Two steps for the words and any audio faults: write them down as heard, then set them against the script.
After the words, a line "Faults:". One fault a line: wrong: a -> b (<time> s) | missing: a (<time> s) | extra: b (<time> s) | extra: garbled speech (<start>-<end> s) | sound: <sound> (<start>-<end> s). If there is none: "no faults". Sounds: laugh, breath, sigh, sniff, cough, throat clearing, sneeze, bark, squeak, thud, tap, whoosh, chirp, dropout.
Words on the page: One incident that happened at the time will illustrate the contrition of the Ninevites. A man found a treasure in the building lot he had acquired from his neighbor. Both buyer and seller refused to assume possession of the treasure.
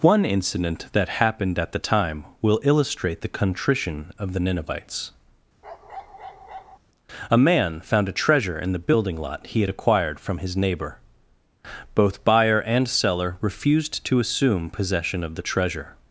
One incident that happened at the time will illustrate the contrition of the Ninevites. A man found a treasure in the building lot he had acquired from his neighbor. Both buyer and seller refused to assume possession of the treasure.
Faults:
sound: bark (5.6-6.8 s)